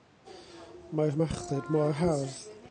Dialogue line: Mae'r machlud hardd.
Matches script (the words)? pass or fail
fail